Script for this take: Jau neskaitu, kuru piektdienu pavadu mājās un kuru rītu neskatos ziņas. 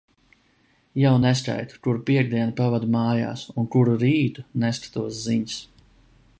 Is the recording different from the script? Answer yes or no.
no